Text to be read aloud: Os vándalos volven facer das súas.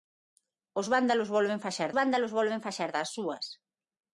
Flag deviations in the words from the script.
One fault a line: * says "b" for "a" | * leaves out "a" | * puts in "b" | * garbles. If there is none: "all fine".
* puts in "vándalos volven facer"